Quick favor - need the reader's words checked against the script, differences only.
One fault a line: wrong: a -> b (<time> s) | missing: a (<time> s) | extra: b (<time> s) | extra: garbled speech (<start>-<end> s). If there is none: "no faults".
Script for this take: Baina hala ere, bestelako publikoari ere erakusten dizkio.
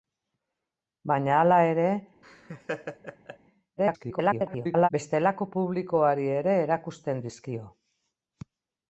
extra: garbled speech (3.8-4.9 s)